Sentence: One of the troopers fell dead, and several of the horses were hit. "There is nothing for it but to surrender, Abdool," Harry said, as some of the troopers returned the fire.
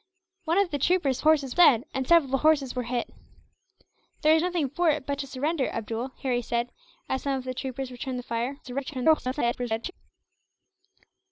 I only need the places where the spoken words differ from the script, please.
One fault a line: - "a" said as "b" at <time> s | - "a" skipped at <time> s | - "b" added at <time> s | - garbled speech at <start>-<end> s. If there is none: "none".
- "fell" said as "horses" at 1.2 s
- garbled speech at 8.6-9.9 s